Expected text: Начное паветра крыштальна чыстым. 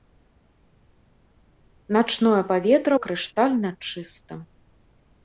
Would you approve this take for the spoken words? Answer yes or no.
yes